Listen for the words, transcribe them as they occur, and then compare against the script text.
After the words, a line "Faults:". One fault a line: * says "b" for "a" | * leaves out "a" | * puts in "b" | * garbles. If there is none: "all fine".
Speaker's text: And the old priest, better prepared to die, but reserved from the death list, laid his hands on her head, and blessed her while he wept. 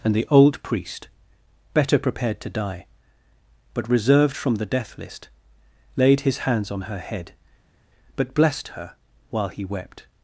And the old priest, better prepared to die, but reserved from the death list, laid his hands on her head, but blessed her while he wept.
Faults:
* says "but" for "and"